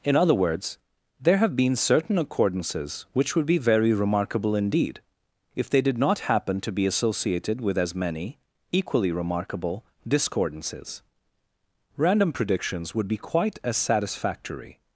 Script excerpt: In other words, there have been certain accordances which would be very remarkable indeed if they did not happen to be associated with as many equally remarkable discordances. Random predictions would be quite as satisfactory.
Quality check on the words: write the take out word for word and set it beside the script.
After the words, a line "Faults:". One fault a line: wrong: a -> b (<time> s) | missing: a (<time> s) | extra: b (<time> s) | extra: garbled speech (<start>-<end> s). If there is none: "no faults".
In other words, there have been certain accordances which would be very remarkable indeed if they did not happen to be associated with as many equally remarkable discordances. Random predictions would be quite as satisfactory.
Faults:
no faults